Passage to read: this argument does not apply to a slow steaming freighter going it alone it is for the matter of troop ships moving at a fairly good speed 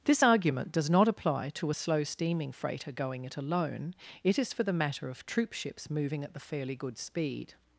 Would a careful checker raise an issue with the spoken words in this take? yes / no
yes